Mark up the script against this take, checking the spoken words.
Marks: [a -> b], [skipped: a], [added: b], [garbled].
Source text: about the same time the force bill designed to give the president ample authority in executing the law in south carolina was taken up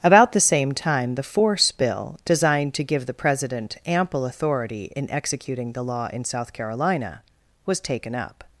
about the same time the force bill designed to give the president ample authority in executing the law in south carolina was taken up